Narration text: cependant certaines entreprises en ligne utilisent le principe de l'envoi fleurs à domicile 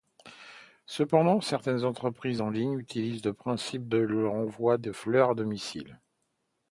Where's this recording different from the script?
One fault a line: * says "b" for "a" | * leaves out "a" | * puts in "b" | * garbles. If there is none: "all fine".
* puts in "de"